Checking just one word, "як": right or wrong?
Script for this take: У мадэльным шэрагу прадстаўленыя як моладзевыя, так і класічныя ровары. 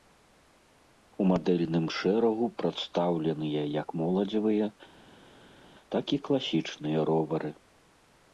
right